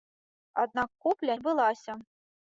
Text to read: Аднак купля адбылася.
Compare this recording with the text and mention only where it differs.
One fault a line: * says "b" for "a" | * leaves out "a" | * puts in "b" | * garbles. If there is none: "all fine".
all fine